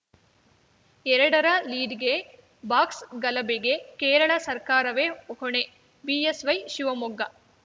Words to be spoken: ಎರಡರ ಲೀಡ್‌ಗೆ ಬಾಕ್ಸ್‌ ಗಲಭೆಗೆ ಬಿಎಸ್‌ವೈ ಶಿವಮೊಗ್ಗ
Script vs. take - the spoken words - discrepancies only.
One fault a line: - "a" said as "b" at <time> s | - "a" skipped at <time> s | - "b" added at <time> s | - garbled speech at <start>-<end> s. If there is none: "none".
- "ಕೇರಳ ಸರ್ಕಾರವೇ ಹೊಣೆ" added at 4.0 s